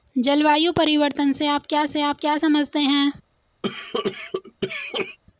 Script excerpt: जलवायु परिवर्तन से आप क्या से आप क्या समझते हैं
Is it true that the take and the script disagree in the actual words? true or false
false